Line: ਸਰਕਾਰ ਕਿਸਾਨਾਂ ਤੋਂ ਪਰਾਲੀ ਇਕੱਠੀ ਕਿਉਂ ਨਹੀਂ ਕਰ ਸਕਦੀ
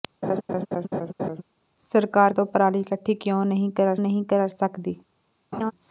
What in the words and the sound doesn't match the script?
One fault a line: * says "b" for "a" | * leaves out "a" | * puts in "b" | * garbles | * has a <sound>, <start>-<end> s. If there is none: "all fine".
* has a laugh, 0.2-1.4 s
* leaves out "ਕਿਸਾਨਾਂ"
* puts in "ਨਹੀਂ ਕਰ"
* has a laugh, 5.5-5.7 s